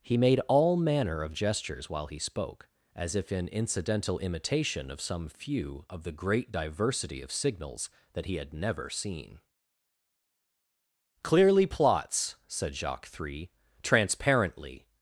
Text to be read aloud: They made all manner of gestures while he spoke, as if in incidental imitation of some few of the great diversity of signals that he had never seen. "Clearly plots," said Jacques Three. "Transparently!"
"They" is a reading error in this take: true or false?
true